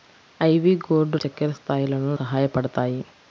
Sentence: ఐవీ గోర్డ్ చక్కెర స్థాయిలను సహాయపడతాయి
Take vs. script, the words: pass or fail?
pass